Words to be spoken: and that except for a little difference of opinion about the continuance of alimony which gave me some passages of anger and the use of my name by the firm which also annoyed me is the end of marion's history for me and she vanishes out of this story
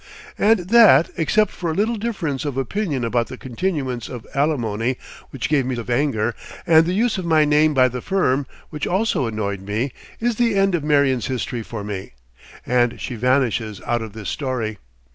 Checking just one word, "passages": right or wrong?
wrong